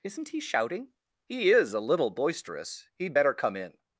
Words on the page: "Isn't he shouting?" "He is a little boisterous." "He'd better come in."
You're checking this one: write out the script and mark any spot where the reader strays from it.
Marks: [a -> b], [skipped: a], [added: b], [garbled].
"Isn't he shouting?" "He is a little boisterous." "He'd better come in."